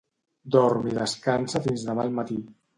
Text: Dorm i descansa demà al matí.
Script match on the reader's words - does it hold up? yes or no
no